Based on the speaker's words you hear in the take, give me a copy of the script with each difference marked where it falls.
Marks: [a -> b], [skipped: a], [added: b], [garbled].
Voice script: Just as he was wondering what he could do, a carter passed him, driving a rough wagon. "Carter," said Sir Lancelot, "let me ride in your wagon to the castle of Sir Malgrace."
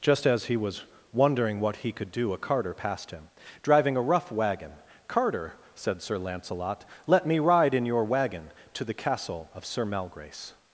Just as he was wondering what he could do, a carter passed him, driving a rough wagon. "Carter," said Sir Lancelot, "let me ride in your wagon to the castle of Sir Malgrace."